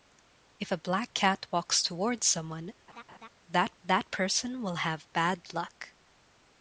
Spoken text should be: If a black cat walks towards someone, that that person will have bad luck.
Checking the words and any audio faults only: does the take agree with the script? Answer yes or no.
no